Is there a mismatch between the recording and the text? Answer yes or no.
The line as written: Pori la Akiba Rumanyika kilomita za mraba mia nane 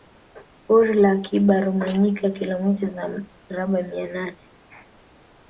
no